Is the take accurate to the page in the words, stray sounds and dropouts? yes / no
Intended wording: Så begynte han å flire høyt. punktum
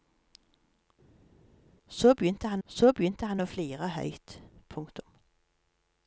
no